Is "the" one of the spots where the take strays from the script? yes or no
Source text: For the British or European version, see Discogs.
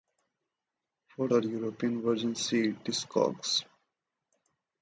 yes